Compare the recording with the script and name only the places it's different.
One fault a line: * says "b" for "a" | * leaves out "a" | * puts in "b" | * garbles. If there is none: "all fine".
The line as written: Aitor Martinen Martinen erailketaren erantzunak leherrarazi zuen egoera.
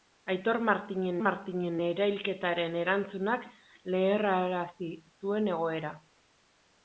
all fine